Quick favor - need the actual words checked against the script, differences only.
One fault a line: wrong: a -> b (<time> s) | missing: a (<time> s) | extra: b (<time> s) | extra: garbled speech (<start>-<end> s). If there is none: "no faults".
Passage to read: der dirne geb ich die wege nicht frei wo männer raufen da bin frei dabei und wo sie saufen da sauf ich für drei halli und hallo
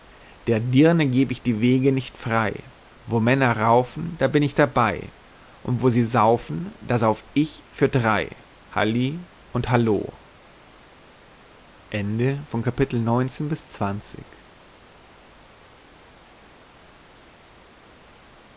wrong: frei -> ich (4.4 s)